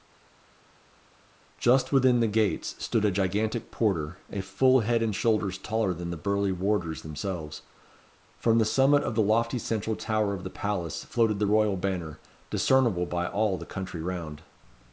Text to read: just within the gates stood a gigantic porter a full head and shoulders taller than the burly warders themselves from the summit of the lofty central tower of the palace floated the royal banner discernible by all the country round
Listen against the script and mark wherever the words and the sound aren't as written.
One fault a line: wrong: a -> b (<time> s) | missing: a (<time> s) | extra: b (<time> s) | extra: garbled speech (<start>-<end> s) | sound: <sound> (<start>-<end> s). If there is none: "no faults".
no faults